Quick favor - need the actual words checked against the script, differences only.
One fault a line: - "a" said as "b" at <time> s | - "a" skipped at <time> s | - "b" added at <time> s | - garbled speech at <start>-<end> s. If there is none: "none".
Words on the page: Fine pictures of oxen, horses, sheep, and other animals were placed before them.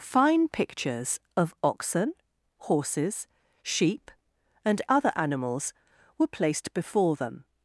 none